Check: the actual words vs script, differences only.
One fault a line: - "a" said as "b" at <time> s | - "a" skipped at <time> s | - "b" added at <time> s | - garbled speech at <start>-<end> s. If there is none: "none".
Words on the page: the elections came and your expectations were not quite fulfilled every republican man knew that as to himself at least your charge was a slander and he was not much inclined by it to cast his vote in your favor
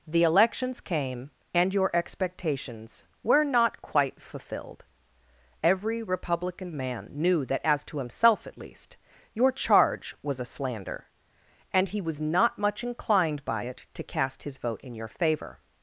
none